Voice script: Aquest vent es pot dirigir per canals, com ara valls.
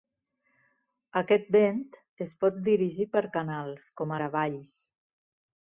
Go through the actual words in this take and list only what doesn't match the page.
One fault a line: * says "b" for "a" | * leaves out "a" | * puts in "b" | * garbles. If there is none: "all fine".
all fine